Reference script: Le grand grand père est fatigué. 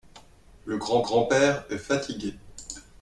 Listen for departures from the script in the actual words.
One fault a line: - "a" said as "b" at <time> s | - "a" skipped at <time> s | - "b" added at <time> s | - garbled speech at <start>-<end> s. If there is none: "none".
none